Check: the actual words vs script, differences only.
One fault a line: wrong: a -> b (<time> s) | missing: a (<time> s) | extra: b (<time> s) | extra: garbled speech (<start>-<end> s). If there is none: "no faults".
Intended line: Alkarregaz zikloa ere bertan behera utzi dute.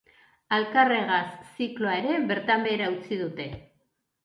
no faults